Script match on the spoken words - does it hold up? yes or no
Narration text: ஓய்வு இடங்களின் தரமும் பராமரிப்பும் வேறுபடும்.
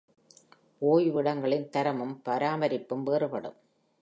yes